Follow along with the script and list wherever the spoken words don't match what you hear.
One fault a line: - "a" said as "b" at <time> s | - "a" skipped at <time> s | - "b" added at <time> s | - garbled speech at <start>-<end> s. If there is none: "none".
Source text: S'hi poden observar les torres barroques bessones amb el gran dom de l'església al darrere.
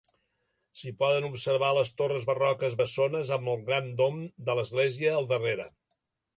none